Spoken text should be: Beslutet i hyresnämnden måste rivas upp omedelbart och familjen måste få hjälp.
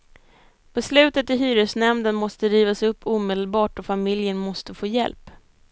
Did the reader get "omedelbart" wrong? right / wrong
right